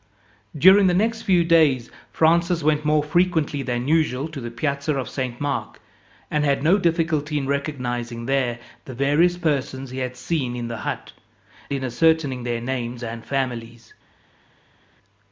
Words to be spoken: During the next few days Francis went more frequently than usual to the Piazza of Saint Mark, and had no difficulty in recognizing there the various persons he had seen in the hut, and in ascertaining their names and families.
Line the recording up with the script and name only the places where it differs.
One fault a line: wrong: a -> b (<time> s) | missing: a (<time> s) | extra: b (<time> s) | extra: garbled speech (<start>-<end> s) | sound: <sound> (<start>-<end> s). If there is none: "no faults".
missing: and (11.1 s)